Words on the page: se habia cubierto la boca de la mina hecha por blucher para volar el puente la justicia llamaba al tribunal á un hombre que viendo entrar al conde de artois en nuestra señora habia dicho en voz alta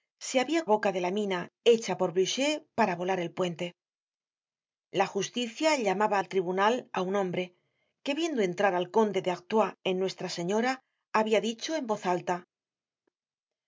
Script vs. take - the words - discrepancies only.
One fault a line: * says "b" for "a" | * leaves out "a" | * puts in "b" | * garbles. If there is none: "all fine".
* leaves out "cubierto la"